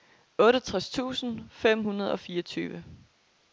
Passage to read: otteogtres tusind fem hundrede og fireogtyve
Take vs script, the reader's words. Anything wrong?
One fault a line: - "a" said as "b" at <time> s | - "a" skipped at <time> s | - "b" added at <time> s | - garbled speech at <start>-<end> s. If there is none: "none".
none